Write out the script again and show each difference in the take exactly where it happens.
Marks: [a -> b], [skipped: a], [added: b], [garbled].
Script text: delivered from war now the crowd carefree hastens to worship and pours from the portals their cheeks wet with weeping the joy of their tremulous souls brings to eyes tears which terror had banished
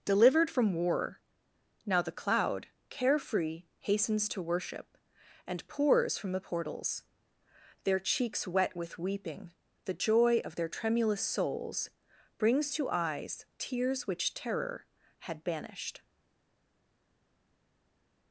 delivered from war now the [crowd -> cloud] carefree hastens to worship and pours from the portals their cheeks wet with weeping the joy of their tremulous souls brings to eyes tears which terror had banished